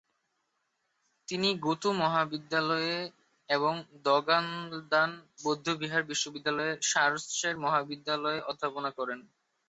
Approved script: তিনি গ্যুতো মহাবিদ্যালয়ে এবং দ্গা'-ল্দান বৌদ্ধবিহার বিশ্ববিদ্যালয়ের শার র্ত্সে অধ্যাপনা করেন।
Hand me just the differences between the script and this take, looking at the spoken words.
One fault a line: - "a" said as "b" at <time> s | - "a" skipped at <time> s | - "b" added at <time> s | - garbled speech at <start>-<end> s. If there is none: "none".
- "মহাবিদ্যালয়ে" added at 7.6 s